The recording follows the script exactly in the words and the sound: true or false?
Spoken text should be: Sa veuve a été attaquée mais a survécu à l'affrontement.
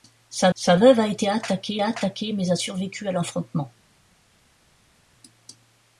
false